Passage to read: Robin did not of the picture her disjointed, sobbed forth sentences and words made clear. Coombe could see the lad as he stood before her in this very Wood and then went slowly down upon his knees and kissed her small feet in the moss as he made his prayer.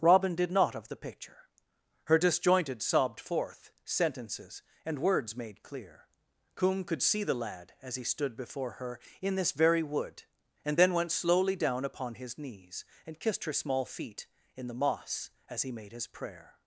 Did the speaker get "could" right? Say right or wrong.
right